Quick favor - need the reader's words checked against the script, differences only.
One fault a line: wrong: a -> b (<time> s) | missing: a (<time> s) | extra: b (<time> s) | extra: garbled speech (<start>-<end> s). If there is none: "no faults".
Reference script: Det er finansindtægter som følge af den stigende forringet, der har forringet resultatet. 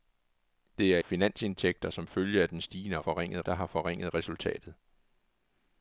no faults